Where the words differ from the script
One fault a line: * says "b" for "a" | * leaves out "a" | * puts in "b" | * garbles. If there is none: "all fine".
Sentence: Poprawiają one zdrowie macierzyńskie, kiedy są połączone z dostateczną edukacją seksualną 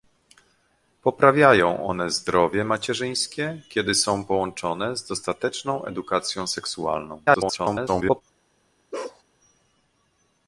* garbles